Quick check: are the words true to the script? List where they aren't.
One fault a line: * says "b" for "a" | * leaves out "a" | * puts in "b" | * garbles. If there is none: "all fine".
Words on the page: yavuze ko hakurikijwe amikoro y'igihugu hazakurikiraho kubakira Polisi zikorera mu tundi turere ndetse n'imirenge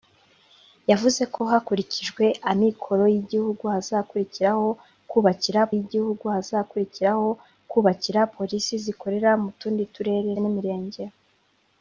* puts in "y'igihugu hazakurikiraho kubakira"
* leaves out "ndetse"